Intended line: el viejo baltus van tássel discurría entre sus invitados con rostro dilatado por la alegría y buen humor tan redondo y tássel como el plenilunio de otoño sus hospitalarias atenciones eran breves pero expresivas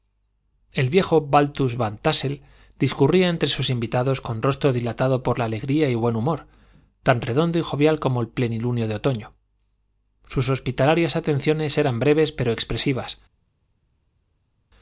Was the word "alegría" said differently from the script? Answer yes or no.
no